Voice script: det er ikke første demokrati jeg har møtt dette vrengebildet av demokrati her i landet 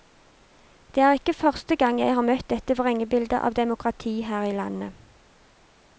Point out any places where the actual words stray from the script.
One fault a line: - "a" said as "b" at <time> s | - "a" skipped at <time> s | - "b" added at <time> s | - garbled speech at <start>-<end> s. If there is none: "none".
- "demokrati" said as "gang" at 1.8 s